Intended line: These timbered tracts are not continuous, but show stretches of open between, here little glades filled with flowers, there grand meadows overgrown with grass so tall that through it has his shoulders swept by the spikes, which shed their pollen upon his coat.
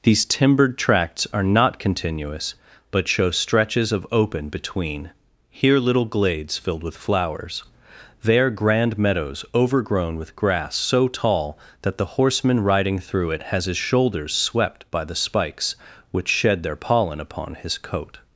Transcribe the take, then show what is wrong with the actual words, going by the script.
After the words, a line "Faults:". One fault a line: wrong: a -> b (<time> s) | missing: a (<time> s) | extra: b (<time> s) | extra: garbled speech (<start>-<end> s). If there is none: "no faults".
These timbered tracts are not continuous, but show stretches of open between, here little glades filled with flowers, there grand meadows overgrown with grass so tall that the horseman riding through it has his shoulders swept by the spikes, which shed their pollen upon his coat.
Faults:
extra: the horseman riding (12.0 s)